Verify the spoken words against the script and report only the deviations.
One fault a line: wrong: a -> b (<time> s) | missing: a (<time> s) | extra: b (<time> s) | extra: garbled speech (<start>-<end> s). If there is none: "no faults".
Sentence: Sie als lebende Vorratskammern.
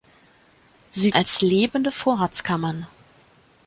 no faults